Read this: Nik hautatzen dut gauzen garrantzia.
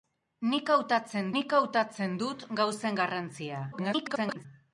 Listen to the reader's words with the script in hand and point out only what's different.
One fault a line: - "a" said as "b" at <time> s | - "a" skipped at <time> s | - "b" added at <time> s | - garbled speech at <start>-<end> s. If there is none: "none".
- "nik hautatzen" added at 1.4 s
- garbled speech at 3.7-4.5 s